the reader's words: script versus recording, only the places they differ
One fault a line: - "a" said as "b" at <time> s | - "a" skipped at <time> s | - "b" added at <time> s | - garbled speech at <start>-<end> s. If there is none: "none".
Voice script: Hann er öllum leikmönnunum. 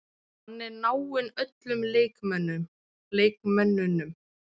- "náinn" added at 0.8 s